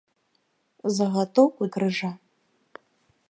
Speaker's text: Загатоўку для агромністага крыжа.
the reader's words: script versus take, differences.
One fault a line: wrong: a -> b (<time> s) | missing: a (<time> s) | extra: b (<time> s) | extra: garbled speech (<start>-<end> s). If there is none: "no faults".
missing: для агромністага (1.6 s)